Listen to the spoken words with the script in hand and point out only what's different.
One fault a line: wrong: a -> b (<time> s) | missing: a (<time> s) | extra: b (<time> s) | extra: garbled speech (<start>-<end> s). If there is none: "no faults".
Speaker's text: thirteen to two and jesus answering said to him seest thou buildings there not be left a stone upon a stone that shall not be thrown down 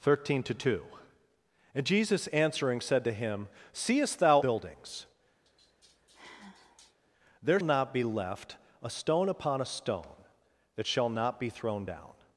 no faults